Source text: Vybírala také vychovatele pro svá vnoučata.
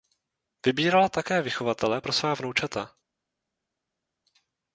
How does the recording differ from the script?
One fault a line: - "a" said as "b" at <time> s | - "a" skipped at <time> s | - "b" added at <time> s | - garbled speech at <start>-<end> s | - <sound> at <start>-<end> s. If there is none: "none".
none